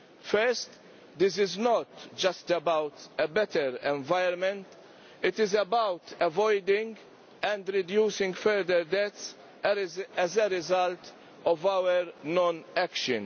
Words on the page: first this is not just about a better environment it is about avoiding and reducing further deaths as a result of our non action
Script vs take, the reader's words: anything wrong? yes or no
no